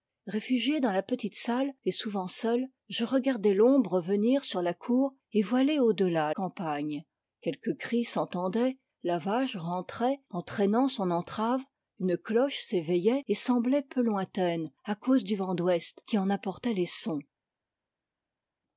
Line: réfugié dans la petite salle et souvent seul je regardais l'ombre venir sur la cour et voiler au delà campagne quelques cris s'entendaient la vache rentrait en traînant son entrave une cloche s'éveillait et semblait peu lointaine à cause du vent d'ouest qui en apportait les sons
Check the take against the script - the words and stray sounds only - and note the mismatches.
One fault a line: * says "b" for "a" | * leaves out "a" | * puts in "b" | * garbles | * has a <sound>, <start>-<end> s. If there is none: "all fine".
all fine